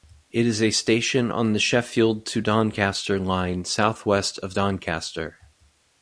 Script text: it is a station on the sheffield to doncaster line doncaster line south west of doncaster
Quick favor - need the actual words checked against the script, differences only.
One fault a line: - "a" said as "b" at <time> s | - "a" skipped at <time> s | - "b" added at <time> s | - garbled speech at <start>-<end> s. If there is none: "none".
- "doncaster line" skipped at 3.6 s